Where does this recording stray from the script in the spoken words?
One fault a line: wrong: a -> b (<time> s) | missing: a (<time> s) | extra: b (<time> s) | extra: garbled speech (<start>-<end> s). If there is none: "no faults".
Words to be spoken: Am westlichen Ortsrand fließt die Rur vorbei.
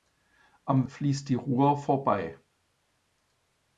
missing: westlichen Ortsrand (0.9 s)